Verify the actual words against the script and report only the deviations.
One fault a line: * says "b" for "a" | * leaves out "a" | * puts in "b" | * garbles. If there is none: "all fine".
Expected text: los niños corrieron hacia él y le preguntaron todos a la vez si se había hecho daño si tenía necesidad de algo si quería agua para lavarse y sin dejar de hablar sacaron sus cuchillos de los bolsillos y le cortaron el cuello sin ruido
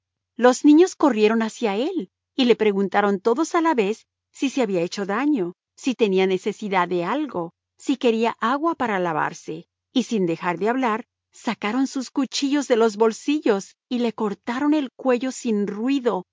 all fine